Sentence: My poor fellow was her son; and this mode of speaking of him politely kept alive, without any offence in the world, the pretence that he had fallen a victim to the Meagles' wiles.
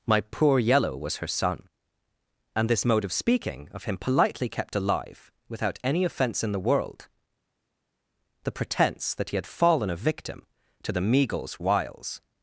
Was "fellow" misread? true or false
true